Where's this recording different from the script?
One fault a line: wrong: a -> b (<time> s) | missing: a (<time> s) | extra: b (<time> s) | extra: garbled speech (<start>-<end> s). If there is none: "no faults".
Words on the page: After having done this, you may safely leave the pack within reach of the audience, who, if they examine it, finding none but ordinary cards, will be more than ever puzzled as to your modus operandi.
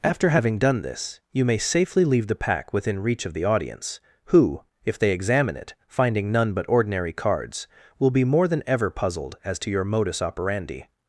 no faults